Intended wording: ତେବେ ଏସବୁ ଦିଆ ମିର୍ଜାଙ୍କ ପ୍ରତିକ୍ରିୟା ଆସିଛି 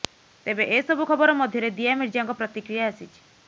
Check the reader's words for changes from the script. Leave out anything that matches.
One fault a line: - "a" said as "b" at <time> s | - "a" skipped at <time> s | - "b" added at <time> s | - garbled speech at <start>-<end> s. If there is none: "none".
- "ଖବର ମଧ୍ୟରେ" added at 1.1 s